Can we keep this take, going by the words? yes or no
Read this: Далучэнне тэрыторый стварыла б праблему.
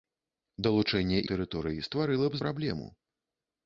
yes